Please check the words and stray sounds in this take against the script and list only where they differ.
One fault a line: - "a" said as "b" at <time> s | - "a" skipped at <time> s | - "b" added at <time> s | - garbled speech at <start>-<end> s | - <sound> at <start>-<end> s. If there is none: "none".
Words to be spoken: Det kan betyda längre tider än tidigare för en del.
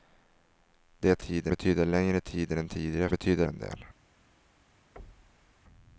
- "kan" said as "tider" at 1.2 s
- "för" said as "betyda" at 3.1 s
- thud at 5.0-5.5 s